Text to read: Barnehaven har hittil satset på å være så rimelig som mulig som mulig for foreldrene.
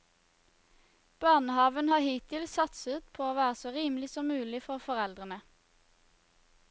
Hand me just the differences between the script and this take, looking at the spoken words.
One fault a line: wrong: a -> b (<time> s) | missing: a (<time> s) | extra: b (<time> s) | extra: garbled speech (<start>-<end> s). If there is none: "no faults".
missing: som mulig (4.6 s)